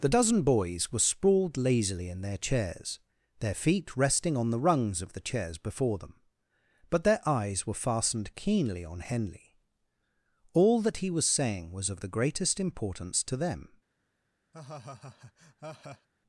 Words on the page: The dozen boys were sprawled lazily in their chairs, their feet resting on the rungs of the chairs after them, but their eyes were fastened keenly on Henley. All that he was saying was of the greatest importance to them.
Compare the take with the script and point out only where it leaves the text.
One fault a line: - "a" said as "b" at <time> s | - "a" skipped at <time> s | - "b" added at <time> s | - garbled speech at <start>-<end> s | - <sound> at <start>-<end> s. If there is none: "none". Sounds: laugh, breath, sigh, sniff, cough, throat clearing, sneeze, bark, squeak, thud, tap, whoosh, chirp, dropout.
- "after" said as "before" at 5.6 s
- laugh at 14.5-16.1 s